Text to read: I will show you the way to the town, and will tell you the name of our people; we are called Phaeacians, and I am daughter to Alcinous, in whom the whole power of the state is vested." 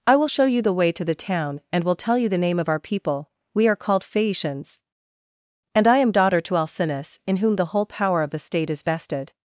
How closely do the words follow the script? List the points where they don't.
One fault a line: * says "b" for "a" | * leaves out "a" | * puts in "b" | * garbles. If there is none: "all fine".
all fine